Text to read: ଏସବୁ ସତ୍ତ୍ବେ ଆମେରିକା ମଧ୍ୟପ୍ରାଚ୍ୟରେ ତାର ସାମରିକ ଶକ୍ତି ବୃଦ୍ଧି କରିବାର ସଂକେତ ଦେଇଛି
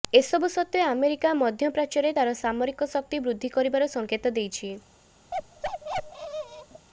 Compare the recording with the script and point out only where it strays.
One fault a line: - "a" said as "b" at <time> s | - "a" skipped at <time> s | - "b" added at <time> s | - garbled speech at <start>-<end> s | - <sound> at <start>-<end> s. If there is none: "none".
- bark at 5.3-6.9 s